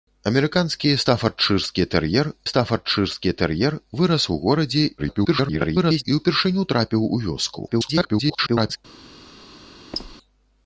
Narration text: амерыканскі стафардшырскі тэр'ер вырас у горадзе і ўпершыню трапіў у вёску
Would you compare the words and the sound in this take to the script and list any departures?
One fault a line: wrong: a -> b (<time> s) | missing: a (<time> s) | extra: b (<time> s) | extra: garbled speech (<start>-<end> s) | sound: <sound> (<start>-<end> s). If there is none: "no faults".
extra: стафардшырскі тэр'ер (2.5 s)
extra: garbled speech (5.0-6.0 s)
extra: garbled speech (7.7-8.8 s)
sound: squeak (9.9-10.2 s)